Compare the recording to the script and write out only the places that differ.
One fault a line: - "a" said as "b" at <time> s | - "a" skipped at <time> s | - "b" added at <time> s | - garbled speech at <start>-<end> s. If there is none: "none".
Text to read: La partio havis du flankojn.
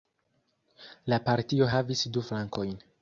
none